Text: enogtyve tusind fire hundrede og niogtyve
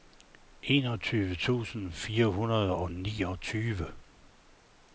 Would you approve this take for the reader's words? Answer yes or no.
yes